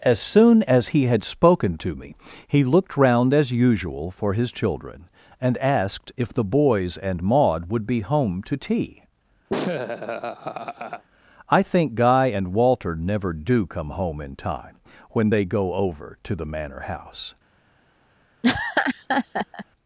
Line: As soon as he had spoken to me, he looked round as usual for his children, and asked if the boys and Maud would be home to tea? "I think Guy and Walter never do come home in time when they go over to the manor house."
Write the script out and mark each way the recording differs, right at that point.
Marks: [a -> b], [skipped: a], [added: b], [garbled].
As soon as he had spoken to me, he looked round as usual for his children, and asked if the boys and Maud would be home to tea? "I think Guy and Walter never do come home in time when they go over to the manor house."